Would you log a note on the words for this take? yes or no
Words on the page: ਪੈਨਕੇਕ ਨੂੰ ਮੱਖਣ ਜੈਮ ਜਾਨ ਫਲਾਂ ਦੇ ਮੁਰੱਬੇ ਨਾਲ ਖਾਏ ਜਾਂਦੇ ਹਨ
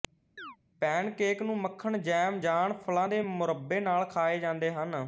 no